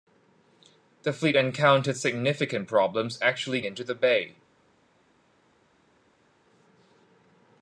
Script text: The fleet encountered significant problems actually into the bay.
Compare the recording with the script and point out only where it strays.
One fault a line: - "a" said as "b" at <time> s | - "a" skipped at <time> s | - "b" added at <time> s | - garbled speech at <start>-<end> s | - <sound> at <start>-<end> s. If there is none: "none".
none